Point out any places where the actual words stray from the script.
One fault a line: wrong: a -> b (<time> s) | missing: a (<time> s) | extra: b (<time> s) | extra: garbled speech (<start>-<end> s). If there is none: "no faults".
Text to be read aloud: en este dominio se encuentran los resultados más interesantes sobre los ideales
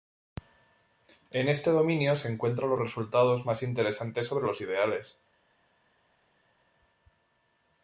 no faults